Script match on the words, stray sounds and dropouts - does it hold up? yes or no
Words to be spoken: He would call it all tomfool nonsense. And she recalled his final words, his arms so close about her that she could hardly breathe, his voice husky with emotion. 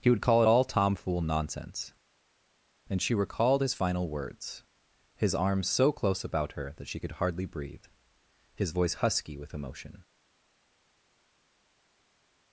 yes